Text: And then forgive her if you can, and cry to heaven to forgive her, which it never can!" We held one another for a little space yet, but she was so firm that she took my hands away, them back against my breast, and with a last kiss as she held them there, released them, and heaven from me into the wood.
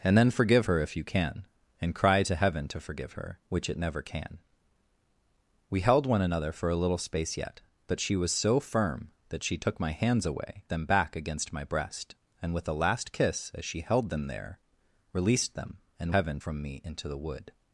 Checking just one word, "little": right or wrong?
right